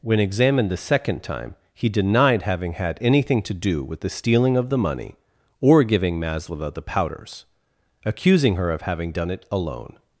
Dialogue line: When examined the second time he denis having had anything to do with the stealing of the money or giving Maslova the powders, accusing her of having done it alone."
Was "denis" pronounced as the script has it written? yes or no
no